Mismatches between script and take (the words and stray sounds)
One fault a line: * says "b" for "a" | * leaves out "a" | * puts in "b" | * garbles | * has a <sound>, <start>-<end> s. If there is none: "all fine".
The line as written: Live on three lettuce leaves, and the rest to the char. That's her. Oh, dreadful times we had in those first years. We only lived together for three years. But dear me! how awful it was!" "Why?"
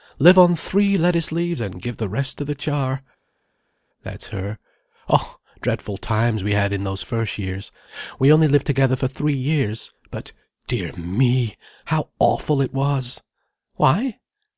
* puts in "give"